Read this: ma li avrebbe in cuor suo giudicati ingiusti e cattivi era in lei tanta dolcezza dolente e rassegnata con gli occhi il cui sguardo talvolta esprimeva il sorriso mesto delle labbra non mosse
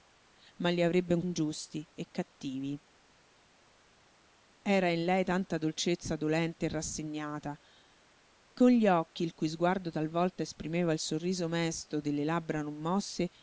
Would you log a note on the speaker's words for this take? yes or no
yes